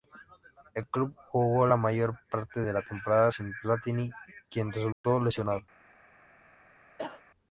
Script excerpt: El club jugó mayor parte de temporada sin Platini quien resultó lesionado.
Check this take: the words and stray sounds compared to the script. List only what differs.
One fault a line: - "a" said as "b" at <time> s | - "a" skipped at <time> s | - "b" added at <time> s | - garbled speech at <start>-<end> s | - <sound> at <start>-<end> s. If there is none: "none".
- "la" added at 1.7 s
- "la" added at 2.7 s
- dropout at 4.9-5.0 s
- cough at 7.0-7.2 s